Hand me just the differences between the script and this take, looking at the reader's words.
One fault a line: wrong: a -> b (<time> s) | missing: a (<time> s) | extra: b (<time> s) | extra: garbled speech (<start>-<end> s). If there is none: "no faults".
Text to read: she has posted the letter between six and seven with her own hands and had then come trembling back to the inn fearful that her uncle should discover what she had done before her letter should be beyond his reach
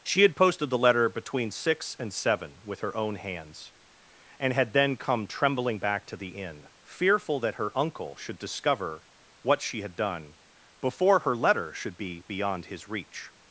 wrong: has -> had (0.2 s)